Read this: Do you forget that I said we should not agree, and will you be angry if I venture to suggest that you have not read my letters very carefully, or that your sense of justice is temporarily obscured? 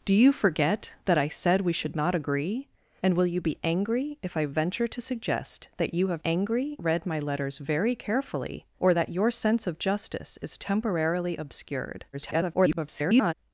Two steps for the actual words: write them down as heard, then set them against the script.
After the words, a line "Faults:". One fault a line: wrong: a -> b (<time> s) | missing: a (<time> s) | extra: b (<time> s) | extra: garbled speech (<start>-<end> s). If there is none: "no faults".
Do you forget that I said we should not agree, and will you be angry if I venture to suggest that you have angry read my letters very carefully, or that your sense of justice is temporarily obscured? [garbled]
Faults:
wrong: not -> angry (6.2 s)
extra: garbled speech (12.1-13.3 s)